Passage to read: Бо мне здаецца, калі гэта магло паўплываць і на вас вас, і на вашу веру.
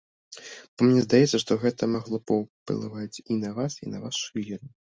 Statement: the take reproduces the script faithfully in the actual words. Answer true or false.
false